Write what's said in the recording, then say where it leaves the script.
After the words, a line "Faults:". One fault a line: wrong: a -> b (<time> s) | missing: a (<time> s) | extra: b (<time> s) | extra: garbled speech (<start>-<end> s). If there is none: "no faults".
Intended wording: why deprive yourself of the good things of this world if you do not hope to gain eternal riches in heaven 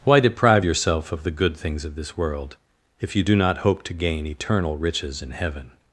why deprive yourself of the good things of this world if you do not hope to gain eternal riches in heaven
Faults:
no faults